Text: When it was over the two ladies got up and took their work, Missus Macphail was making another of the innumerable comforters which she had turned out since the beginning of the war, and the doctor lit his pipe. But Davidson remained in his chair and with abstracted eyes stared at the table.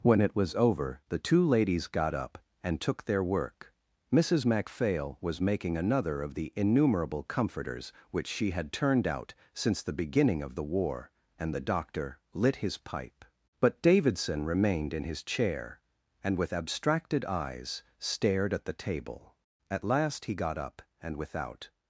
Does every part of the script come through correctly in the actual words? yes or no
no